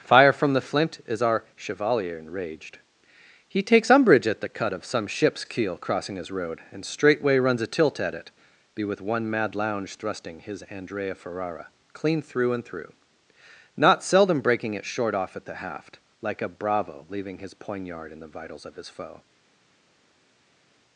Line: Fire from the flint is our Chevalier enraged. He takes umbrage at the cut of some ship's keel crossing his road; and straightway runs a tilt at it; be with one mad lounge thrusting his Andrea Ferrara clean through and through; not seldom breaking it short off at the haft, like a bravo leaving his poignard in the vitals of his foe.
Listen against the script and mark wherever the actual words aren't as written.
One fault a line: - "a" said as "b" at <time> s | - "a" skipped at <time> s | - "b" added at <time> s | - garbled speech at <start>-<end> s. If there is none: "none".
none